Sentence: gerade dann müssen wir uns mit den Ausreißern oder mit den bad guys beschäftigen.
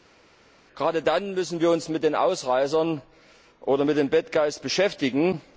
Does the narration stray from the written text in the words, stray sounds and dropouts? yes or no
no